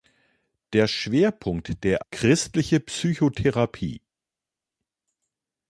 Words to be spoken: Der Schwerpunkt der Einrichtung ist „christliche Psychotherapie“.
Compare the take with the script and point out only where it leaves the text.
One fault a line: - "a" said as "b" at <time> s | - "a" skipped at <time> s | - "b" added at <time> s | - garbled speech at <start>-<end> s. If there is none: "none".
- "Einrichtung ist" skipped at 2.0 s